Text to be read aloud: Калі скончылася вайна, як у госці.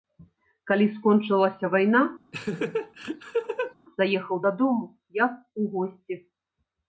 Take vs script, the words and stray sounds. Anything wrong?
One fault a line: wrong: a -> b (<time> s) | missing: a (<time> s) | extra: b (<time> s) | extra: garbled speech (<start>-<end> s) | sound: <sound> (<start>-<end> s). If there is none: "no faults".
sound: laugh (2.3-3.7 s)
extra: заехаў дадому (4.0 s)